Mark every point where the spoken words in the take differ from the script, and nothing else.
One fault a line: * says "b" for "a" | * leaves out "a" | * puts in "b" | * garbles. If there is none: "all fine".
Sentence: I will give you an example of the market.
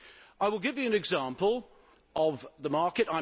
all fine